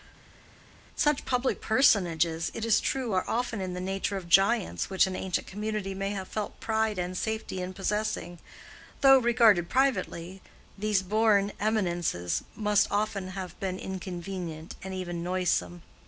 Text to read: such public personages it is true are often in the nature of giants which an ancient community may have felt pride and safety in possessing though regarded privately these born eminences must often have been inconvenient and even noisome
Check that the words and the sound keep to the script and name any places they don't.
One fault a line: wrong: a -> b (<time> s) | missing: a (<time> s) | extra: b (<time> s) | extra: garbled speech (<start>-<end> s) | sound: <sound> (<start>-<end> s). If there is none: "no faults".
no faults